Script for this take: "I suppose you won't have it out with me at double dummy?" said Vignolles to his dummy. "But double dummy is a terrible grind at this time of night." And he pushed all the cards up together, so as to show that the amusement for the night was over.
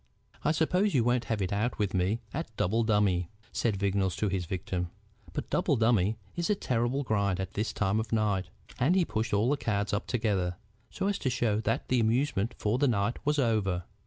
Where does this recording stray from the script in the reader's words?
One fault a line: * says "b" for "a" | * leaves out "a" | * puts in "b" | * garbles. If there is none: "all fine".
* says "victim" for "dummy"